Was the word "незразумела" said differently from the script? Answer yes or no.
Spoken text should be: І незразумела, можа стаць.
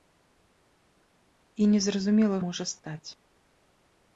no